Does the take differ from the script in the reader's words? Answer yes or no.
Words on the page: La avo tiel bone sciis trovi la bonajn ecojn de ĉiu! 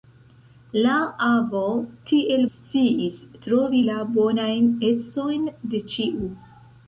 yes